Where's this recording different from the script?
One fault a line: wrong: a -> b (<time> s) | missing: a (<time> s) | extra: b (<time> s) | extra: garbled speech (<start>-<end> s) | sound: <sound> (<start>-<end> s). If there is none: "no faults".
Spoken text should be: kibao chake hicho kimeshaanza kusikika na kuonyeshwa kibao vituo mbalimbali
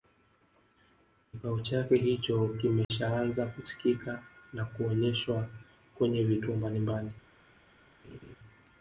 sound: dropout (2.8-2.9 s)
wrong: kibao -> kwenye (6.0 s)
sound: laugh (8.0-8.4 s)